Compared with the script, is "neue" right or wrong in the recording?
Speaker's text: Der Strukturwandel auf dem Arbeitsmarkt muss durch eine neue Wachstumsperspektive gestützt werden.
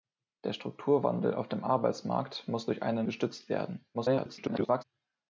wrong